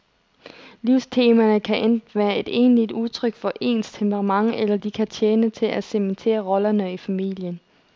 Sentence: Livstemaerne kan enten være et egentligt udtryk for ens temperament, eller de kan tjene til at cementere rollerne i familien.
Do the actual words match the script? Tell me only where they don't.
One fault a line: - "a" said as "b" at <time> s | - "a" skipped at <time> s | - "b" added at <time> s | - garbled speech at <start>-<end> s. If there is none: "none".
none